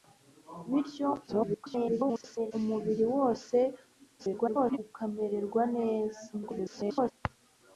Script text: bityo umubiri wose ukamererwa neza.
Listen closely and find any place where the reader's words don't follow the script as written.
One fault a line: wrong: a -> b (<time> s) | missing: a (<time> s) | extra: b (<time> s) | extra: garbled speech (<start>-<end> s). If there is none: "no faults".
extra: garbled speech (1.3-2.5 s)
extra: garbled speech (4.2-4.8 s)
extra: garbled speech (6.3-7.1 s)